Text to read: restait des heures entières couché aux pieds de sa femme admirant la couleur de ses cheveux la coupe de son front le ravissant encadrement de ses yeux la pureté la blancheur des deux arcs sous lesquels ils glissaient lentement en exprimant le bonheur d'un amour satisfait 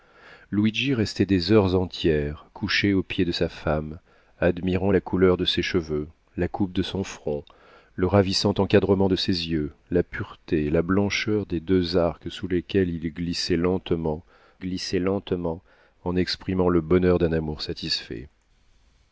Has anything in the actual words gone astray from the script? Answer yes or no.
yes